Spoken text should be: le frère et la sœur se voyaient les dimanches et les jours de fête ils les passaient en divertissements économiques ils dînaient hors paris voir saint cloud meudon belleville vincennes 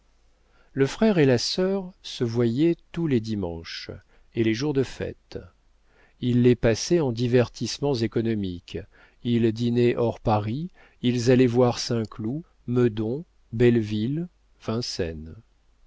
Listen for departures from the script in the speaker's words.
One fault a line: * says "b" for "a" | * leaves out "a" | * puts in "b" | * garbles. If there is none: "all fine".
* puts in "tous"
* puts in "ils allaient"